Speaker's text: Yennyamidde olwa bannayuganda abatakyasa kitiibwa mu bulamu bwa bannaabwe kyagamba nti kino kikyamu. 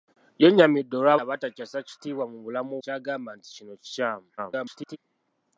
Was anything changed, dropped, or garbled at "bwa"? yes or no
yes